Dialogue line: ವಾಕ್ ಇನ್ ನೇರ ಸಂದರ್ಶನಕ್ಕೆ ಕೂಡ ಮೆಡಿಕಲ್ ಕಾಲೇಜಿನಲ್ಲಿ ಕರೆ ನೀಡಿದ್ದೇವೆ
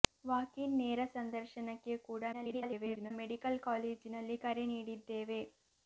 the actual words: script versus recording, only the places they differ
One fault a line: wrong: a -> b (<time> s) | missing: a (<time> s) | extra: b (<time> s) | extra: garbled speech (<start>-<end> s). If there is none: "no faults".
extra: garbled speech (2.3-3.1 s)